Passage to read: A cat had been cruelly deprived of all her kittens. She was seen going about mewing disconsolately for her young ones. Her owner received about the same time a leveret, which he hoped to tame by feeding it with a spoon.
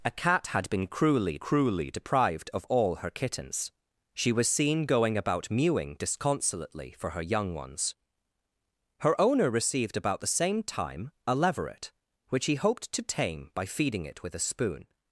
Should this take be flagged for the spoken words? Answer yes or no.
yes